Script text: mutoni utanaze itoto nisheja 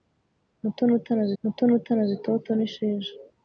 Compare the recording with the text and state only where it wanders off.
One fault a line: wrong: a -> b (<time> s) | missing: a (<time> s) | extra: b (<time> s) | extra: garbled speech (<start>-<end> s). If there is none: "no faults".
extra: mutoni utanaze (1.4 s)